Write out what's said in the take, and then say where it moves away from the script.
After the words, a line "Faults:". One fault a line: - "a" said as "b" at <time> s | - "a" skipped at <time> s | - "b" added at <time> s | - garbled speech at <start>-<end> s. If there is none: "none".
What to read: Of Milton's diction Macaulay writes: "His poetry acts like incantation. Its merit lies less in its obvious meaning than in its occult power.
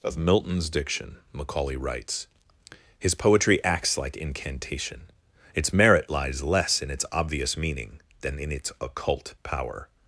Of Milton's diction Macaulay writes: "His poetry acts like incantation. Its merit lies less in its obvious meaning than in its occult power.
Faults:
none